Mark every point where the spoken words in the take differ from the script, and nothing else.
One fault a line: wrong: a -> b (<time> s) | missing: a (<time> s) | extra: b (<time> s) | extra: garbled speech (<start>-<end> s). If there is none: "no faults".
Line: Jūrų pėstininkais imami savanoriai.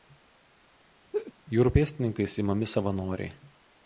no faults